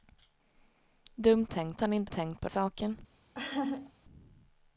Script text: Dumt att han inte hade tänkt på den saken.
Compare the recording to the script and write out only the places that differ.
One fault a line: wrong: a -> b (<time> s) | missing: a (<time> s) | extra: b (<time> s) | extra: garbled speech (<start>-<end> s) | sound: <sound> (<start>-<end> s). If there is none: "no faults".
wrong: att -> tänkt (1.5 s)
missing: hade (2.1 s)
missing: den (2.5 s)
sound: laugh (3.3-3.9 s)